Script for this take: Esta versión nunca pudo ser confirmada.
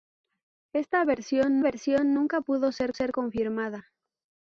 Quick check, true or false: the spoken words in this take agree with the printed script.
false